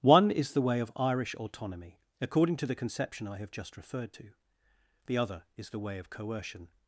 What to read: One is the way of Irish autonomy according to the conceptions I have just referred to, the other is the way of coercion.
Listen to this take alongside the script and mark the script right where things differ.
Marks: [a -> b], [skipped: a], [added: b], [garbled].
One is the way of Irish autonomy according to the [conceptions -> conception] I have just referred to, the other is the way of coercion.